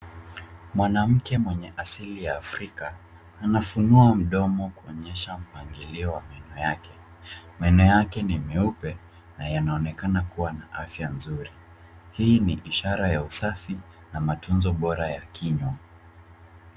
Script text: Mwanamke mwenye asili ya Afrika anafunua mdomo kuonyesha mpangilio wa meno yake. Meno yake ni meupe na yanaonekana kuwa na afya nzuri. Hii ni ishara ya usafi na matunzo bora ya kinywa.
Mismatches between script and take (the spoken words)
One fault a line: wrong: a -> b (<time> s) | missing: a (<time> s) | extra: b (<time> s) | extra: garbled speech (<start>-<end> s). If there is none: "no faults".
no faults